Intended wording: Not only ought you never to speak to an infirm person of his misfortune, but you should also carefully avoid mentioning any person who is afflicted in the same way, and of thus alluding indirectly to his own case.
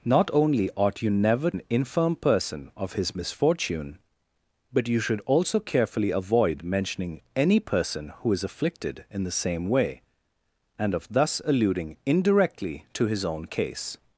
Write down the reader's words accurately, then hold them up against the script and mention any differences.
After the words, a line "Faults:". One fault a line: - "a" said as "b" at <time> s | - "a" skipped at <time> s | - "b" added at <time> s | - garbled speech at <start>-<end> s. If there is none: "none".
Not only ought you never an infirm person of his misfortune, but you should also carefully avoid mentioning any person who is afflicted in the same way, and of thus alluding indirectly to his own case.
Faults:
- "to speak to" skipped at 1.5 s